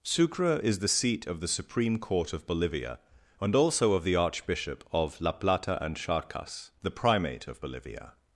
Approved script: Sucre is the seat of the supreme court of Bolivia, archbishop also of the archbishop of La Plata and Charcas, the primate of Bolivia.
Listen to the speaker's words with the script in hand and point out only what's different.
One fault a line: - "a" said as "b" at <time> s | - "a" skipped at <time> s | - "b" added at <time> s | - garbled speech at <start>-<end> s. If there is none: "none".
- "archbishop" said as "and" at 3.4 s